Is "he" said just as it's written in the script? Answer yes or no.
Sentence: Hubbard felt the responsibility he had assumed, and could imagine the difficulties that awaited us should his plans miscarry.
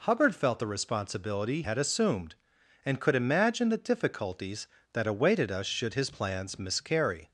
no